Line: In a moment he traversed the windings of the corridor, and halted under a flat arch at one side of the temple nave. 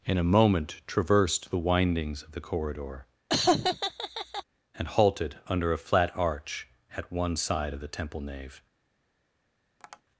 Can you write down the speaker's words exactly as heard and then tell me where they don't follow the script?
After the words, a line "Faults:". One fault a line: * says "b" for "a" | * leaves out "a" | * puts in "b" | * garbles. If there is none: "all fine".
In a moment traversed the windings of the corridor, and halted under a flat arch at one side of the temple nave.
Faults:
* leaves out "he"